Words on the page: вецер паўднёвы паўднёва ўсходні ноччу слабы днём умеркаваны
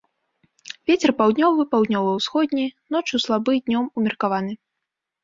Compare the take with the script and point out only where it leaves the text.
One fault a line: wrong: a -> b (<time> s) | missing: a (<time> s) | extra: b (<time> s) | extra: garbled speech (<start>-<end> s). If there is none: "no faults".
no faults